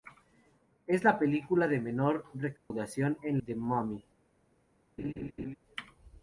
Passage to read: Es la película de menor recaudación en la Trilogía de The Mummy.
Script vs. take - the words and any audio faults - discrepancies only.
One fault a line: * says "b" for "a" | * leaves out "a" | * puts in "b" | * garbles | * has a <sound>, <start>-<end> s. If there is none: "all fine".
* has a dropout, 2.6-2.7 s
* leaves out "la Trilogía de"
* has a laugh, 5.0-5.6 s